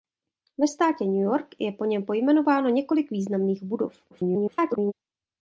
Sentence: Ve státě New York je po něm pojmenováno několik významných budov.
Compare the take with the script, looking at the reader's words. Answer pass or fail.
fail